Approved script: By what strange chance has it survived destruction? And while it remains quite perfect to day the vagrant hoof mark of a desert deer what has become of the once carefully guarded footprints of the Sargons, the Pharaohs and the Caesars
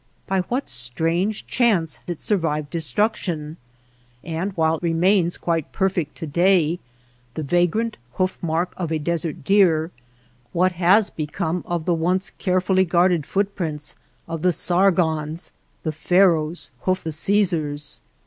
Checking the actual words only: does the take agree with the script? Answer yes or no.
no